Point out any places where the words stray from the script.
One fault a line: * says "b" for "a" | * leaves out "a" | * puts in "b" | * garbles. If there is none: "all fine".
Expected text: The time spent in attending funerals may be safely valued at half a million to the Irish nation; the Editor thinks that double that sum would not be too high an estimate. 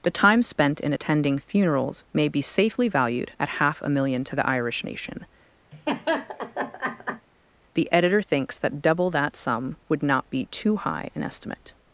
all fine